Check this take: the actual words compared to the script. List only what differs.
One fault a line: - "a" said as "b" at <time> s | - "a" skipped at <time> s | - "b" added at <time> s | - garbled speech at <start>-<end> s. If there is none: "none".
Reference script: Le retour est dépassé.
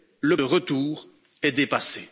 none